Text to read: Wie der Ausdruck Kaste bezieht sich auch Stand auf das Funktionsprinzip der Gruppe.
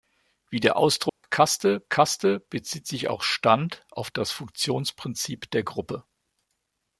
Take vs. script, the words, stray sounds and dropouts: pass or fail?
fail